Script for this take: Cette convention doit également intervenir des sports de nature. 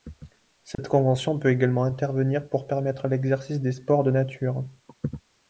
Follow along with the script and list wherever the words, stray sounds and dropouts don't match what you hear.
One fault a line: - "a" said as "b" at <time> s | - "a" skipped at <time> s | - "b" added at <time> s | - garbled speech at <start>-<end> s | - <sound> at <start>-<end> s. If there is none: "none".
- dropout at 0.7-0.8 s
- "doit" said as "peut" at 1.4 s
- "pour permettre l'exercice" added at 2.5 s